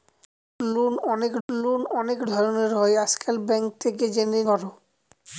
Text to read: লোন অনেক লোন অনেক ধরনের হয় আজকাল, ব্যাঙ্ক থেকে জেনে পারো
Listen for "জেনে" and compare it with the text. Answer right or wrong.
right